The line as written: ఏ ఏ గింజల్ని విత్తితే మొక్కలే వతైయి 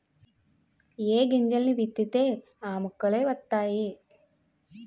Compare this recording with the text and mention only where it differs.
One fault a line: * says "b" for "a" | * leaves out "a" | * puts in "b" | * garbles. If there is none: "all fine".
* leaves out "ఏ"
* puts in "ఆ"